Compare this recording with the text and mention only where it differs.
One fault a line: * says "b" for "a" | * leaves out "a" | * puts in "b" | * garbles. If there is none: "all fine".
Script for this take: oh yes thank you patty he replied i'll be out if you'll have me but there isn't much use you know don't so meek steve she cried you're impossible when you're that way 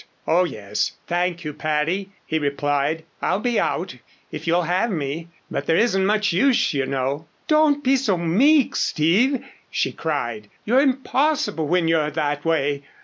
* puts in "be"